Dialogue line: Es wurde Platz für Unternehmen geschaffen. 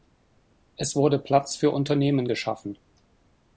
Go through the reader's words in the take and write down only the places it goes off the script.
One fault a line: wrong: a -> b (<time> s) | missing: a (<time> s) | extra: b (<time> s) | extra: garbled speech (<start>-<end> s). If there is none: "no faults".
no faults